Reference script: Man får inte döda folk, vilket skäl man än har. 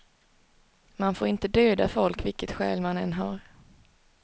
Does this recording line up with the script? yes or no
yes